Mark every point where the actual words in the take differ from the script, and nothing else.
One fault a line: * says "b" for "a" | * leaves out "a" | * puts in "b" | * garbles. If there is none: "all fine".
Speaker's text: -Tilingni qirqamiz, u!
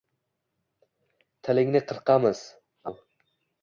all fine